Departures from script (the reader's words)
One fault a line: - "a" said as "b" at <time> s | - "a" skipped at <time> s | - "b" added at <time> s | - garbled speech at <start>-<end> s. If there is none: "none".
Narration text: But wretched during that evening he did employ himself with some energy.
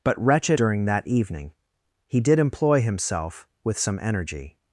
none